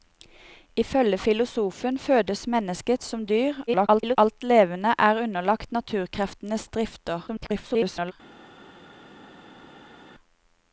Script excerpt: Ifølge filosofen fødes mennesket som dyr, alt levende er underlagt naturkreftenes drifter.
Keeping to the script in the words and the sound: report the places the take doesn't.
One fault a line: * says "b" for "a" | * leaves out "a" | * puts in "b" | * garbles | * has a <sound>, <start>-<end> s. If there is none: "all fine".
* garbles
* garbles